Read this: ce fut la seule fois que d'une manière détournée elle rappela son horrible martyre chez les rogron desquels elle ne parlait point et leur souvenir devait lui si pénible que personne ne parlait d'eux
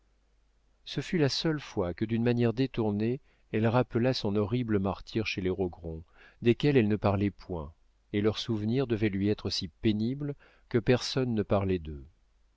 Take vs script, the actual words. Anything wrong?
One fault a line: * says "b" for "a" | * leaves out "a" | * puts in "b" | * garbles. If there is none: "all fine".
* puts in "être"